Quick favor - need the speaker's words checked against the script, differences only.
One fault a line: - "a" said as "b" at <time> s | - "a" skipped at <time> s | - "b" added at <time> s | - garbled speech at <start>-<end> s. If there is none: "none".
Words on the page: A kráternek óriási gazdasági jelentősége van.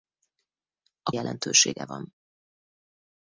- "kráternek óriási gazdasági" skipped at 1.1 s